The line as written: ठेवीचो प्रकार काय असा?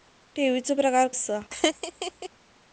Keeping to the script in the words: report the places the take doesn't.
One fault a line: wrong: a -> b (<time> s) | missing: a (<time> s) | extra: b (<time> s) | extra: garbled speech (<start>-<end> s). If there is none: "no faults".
missing: काय (1.1 s)